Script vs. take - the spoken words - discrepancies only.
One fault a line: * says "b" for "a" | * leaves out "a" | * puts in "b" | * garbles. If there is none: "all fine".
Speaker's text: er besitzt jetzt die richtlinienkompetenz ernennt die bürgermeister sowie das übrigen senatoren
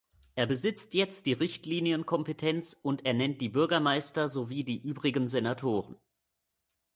* puts in "und"
* says "die" for "das"